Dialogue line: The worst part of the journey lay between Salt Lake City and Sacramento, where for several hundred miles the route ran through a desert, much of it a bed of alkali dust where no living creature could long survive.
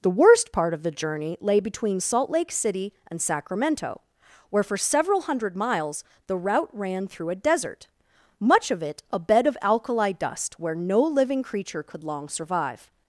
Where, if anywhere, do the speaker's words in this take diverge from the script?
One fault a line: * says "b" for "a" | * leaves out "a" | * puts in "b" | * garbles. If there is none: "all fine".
all fine